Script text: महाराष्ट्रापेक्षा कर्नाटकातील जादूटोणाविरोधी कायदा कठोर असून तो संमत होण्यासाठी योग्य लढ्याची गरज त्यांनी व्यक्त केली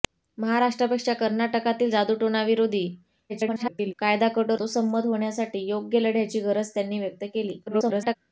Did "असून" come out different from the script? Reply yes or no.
yes